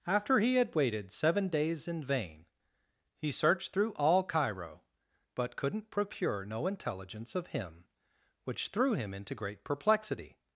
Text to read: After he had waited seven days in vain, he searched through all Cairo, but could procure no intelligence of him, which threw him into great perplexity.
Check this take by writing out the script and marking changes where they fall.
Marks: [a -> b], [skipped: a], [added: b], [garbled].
After he had waited seven days in vain, he searched through all Cairo, but [could -> couldn't] procure no intelligence of him, which threw him into great perplexity.